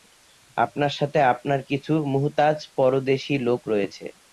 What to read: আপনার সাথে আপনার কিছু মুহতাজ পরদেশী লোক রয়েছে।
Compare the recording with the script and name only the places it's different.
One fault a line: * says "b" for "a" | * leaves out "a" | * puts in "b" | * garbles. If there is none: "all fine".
all fine